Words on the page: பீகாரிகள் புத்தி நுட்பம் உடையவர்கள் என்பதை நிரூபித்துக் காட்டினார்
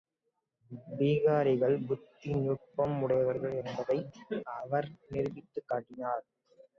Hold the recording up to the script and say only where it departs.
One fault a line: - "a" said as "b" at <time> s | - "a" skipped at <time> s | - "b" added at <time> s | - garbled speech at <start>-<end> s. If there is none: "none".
- "அவர்" added at 4.6 s